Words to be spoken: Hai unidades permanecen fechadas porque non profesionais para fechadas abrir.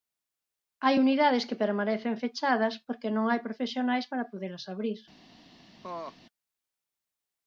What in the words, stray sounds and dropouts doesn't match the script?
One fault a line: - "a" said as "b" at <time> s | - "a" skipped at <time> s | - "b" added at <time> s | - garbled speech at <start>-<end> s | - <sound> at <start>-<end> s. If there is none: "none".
- "que" added at 1.5 s
- "hai" added at 3.3 s
- "fechadas" said as "podelas" at 4.3 s
- laugh at 5.8-6.2 s